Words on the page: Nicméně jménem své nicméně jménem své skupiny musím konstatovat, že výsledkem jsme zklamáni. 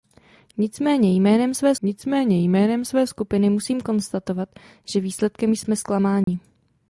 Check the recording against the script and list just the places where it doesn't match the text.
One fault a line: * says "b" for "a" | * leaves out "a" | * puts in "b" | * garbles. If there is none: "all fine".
all fine